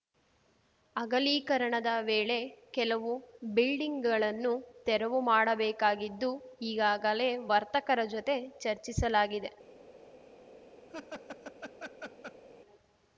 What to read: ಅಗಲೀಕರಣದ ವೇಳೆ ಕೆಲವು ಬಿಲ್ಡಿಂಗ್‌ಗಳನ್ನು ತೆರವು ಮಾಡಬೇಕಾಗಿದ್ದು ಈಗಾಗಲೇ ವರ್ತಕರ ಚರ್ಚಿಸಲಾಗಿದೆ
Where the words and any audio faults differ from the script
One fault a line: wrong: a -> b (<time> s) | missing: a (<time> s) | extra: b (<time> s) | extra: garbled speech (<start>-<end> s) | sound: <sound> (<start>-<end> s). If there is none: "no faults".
extra: ಜೊತೆ (8.1 s)
sound: laugh (10.9-12.4 s)